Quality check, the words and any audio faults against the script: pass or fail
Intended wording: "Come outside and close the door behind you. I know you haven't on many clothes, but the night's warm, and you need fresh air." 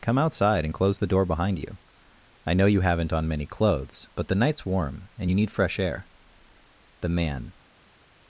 fail